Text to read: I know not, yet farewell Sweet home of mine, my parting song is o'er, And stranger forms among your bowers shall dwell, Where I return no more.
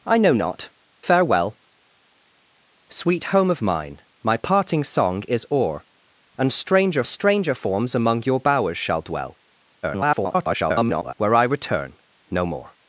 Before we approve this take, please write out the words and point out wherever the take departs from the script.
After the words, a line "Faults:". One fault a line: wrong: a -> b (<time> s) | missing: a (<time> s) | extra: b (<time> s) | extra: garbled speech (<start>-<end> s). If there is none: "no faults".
I know not, farewell Sweet home of mine, my parting song is o'er, And stranger stranger forms among your bowers shall dwell, [garbled] Where I return no more.
Faults:
missing: yet (0.7 s)
extra: stranger (7.1 s)
extra: garbled speech (9.8-11.1 s)